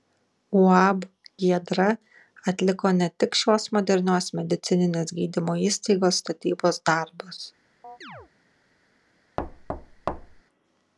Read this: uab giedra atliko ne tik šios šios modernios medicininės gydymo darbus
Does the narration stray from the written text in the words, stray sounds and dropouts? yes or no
yes